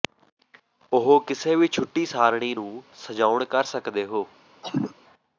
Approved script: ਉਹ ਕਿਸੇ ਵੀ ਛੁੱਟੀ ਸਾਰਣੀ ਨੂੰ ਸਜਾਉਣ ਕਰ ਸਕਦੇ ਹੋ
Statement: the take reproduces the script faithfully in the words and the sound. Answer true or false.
false